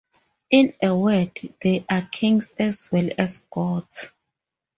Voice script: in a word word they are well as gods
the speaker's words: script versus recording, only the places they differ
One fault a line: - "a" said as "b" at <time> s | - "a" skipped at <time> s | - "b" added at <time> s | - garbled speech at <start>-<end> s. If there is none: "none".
- "word" skipped at 1.4 s
- "kings as" added at 2.1 s